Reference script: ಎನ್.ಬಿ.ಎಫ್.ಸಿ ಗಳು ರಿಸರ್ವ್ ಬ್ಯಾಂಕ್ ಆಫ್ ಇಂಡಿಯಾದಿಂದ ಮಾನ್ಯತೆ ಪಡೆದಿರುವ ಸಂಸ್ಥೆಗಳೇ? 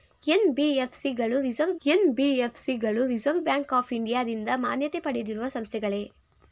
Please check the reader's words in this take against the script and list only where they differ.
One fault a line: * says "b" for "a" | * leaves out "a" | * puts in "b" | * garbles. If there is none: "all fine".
* puts in "ಎನ್.ಬಿ.ಎಫ್.ಸಿ ಗಳು ರಿಸರ್ವ್"